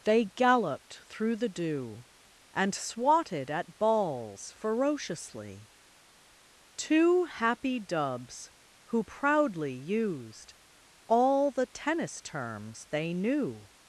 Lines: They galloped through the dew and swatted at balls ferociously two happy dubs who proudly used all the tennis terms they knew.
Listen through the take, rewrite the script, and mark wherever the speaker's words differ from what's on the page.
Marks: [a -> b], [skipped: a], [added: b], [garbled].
They galloped through the dew and swatted at balls ferociously two happy dubs who proudly used all the tennis terms they knew.